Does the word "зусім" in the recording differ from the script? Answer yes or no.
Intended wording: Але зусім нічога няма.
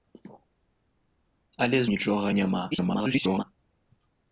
yes